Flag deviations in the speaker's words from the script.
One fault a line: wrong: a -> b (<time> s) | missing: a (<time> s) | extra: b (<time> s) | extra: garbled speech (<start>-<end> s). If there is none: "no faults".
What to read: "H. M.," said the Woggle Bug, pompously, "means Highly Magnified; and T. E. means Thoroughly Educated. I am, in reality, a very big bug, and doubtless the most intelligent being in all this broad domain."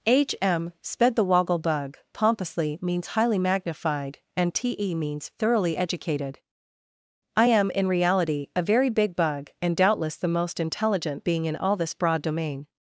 wrong: said -> sped (0.8 s)